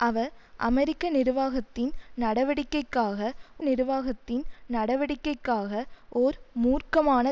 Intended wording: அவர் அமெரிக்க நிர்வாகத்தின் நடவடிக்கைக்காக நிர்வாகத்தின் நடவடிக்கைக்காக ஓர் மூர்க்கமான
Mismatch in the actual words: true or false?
false